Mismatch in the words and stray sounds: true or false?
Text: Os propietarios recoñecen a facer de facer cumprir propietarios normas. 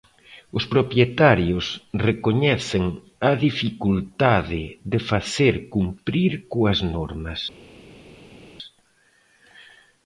true